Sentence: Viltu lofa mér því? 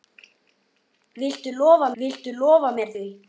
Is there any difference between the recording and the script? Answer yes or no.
yes